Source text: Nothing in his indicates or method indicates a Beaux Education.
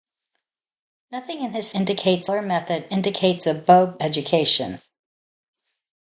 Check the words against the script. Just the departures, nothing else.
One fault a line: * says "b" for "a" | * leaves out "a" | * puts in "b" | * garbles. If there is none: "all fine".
all fine